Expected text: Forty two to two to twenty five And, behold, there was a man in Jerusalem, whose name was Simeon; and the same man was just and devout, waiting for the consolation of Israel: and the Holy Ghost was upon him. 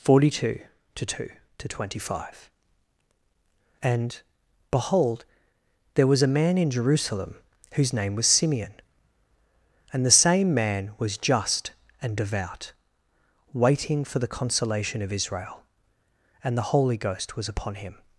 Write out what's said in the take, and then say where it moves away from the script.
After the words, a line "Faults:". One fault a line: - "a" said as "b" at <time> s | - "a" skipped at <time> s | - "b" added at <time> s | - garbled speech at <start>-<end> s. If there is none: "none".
Forty two to two to twenty five And, behold, there was a man in Jerusalem, whose name was Simeon; and the same man was just and devout, waiting for the consolation of Israel: and the Holy Ghost was upon him.
Faults:
none